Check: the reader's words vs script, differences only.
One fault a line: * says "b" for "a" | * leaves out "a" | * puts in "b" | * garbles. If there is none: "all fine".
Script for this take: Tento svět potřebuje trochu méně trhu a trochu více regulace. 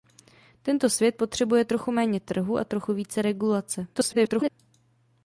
* garbles